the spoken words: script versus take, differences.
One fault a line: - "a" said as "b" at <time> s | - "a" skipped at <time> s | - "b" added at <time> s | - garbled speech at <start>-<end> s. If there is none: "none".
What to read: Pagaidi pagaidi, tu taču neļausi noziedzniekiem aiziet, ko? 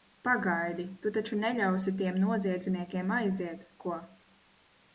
- "pagaidi" skipped at 0.8 s
- "tiem" added at 2.0 s